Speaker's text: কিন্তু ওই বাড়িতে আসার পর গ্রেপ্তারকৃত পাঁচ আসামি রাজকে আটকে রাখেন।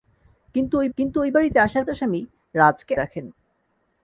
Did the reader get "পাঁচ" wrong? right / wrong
wrong